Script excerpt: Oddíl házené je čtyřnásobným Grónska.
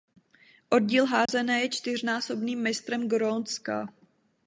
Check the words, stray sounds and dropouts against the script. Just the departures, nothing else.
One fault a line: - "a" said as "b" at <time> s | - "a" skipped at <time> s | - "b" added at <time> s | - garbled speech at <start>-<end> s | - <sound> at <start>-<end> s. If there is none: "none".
- dropout at 1.3-1.3 s
- "mistrem" added at 2.6 s